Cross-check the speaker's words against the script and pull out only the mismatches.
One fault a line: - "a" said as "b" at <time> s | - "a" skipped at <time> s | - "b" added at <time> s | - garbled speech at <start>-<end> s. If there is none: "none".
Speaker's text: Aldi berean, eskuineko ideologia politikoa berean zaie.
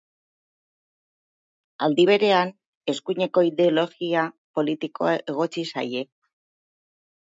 - "berean" said as "egotzi" at 5.3 s